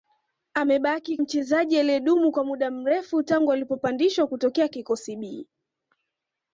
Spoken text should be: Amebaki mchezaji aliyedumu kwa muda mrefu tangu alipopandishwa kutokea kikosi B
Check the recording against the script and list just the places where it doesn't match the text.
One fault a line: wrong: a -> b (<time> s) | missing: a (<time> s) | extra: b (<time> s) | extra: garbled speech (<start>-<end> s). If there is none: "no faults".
no faults